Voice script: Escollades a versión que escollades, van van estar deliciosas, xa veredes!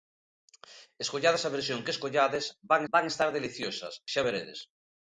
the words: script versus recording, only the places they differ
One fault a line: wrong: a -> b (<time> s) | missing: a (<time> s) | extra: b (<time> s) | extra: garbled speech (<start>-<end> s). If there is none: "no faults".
no faults